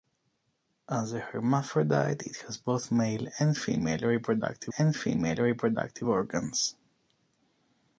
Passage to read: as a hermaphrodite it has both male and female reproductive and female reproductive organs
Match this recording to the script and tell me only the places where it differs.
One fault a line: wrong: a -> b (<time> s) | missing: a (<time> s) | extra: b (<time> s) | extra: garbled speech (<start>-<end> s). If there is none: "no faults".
no faults